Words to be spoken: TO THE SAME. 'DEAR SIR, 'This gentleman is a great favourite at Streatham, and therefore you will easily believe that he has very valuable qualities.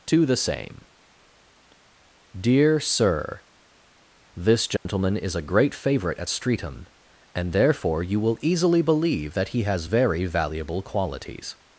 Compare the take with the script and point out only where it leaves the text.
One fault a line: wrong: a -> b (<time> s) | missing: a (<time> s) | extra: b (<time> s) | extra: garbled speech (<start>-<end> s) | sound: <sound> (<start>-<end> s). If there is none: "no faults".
sound: dropout (4.8-4.9 s)